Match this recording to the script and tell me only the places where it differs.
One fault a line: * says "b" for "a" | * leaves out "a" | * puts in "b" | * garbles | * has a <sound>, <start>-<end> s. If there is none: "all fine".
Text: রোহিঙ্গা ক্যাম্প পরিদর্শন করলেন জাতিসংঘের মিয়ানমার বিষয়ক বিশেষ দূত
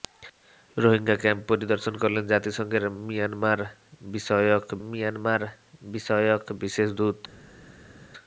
* puts in "মিয়ানমার বিষয়ক"